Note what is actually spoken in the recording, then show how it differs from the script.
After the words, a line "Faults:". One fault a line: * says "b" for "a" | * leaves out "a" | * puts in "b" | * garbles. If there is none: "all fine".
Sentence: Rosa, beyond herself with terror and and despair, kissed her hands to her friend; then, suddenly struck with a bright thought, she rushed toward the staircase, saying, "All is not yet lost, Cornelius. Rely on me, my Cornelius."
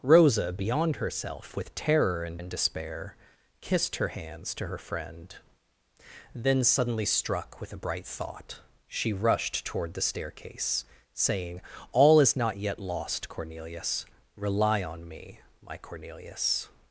Rosa, beyond herself with terror and and despair, kissed her hands to her friend; then, suddenly struck with a bright thought, she rushed toward the staircase, saying, "All is not yet lost, Cornelius. Rely on me, my Cornelius."
Faults:
all fine